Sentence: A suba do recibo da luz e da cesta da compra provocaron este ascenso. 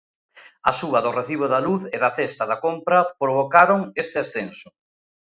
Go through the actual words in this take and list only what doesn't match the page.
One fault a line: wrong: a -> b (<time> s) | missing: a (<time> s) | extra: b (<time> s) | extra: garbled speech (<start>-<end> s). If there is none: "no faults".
no faults